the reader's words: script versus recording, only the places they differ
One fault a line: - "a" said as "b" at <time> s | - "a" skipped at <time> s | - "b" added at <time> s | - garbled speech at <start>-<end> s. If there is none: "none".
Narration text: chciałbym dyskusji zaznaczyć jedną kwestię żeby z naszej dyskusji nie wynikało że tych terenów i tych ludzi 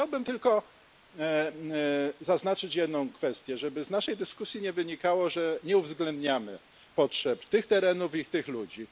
- "dyskusji" said as "tylko" at 0.2 s
- "nie uwzględniamy potrzeb" added at 5.6 s